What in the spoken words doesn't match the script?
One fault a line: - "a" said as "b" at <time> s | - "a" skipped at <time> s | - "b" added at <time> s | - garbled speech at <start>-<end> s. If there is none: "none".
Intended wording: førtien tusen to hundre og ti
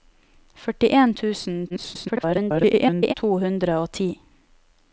- garbled speech at 1.7-3.1 s